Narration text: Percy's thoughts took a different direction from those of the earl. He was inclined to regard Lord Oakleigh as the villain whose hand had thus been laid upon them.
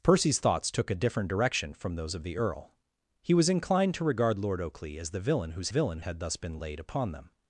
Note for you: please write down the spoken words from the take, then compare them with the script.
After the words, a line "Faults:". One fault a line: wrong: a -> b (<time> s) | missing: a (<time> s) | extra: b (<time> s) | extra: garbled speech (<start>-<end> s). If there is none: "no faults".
Percy's thoughts took a different direction from those of the earl. He was inclined to regard Lord Oakleigh as the villain whose villain had thus been laid upon them.
Faults:
wrong: hand -> villain (5.7 s)